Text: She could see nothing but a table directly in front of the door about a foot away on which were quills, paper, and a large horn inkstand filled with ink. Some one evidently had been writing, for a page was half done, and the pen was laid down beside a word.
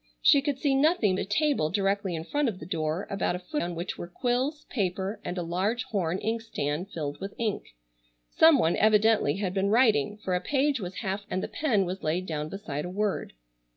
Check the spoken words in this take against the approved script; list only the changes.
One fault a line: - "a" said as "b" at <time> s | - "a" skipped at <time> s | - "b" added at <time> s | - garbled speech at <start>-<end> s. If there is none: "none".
- "but" skipped at 1.1 s
- "away" skipped at 3.6 s
- "done" skipped at 11.3 s